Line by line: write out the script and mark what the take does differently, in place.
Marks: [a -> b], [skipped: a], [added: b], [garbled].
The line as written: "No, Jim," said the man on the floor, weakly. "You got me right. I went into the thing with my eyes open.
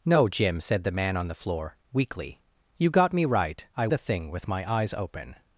"No, Jim," said the man on the floor, weakly. "You got me right. I [skipped: went into] the thing with my eyes open.